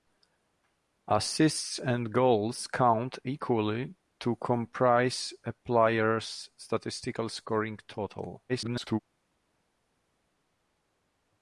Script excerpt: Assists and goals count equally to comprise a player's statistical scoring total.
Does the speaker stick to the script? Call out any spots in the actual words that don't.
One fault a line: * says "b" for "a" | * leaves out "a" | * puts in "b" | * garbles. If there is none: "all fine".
* garbles